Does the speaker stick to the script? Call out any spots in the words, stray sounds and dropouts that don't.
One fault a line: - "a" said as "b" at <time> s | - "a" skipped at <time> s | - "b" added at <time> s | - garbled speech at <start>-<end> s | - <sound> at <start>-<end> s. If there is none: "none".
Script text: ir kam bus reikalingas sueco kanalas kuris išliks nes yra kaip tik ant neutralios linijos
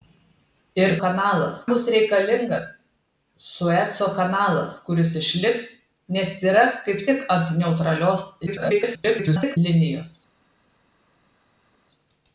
- "kam" said as "kanalas" at 1.0 s
- garbled speech at 8.5-9.6 s